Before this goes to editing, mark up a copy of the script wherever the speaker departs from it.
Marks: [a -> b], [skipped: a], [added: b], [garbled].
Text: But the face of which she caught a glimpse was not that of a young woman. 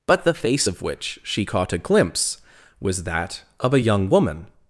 But the face of which she caught a glimpse was [skipped: not] that of a young woman.